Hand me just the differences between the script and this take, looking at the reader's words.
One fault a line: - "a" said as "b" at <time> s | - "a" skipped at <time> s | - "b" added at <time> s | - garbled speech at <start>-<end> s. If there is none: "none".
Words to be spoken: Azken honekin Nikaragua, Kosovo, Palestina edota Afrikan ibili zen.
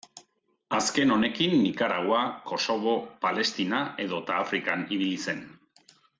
none